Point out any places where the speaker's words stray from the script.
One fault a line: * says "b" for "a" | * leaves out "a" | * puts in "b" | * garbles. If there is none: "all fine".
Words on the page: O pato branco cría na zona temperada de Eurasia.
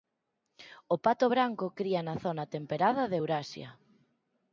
all fine